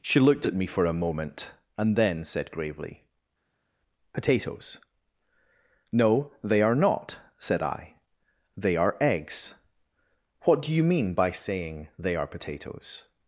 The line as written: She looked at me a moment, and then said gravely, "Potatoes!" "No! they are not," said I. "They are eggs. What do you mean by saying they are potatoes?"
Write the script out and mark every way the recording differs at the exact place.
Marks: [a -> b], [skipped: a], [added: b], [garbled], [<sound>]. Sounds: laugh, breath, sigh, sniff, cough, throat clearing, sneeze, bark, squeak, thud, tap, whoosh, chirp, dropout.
She looked at me [added: for] a moment, and then said gravely, "Potatoes!" "No! they are not," said I. "They are eggs. What do you mean by saying they are potatoes?"